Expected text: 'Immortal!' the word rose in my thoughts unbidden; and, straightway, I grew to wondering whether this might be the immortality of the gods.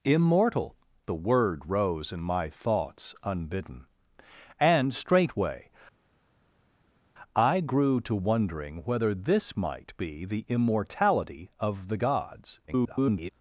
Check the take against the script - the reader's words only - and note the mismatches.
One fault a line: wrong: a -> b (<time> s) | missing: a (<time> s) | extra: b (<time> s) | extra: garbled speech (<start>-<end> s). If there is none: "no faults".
extra: garbled speech (12.7-13.3 s)